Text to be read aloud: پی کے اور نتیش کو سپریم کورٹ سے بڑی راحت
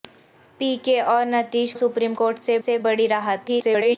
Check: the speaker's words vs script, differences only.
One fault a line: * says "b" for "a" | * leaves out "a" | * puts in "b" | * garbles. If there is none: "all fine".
* leaves out "کو"
* puts in "سے"
* garbles